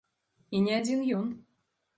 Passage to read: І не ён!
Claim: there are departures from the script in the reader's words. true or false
true